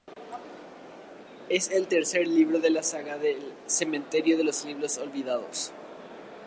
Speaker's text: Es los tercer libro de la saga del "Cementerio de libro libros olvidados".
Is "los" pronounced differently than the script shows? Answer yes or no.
yes